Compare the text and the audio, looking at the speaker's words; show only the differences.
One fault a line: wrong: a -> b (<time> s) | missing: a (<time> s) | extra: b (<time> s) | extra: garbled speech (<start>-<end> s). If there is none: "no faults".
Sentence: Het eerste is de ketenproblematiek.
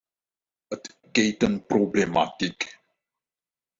missing: eerste is de (1.0 s)